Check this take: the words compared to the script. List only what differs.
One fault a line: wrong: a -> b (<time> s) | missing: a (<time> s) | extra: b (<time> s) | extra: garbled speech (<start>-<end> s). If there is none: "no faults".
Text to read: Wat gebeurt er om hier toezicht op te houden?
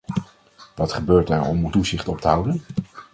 missing: hier (1.7 s)